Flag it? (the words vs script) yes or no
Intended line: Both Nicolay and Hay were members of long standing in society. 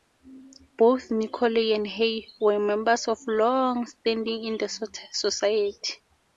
yes